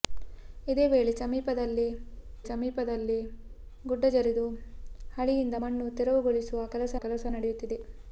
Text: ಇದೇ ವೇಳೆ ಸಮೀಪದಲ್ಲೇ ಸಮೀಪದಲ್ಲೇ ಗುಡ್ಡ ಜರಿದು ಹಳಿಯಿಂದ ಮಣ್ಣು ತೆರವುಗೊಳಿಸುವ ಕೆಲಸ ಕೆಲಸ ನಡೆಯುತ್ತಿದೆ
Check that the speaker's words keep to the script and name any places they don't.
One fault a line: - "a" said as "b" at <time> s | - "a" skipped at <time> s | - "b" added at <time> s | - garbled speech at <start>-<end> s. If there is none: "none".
none